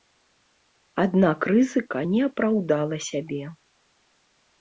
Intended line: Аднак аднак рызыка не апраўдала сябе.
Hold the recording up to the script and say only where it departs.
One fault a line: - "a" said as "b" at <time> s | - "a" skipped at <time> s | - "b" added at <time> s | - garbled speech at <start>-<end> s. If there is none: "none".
- "аднак" skipped at 1.4 s